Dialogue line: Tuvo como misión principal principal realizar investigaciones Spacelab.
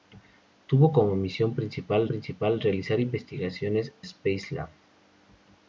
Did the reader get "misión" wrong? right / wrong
right